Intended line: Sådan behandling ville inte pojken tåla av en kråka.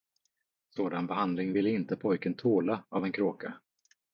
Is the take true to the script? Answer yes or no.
yes